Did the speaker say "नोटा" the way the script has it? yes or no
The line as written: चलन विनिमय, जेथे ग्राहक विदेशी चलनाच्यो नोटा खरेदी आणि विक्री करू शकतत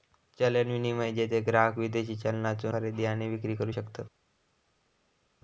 no